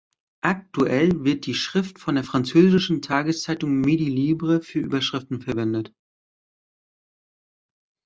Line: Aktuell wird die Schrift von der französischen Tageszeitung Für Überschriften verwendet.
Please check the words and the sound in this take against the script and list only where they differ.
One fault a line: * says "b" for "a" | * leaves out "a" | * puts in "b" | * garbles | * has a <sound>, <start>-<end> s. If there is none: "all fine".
* puts in "Midi Libre"